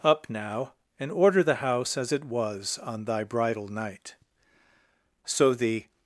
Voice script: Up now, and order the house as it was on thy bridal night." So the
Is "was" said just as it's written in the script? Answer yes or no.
yes